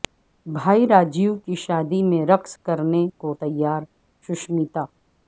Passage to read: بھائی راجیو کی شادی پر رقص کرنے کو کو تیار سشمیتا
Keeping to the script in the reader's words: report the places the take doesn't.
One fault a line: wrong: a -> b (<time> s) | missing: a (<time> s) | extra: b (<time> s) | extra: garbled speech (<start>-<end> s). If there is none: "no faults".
wrong: پر -> میں (2.0 s)
missing: کو (3.3 s)